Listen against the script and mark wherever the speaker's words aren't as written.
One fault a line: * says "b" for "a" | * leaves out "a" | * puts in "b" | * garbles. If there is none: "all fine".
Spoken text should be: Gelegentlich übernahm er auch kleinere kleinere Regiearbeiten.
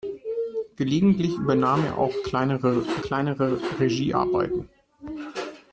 all fine